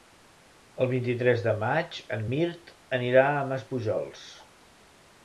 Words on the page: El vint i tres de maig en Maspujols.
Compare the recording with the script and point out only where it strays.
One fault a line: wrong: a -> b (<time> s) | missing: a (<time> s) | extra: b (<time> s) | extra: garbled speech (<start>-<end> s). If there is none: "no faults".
extra: Mirt anirà a (2.3 s)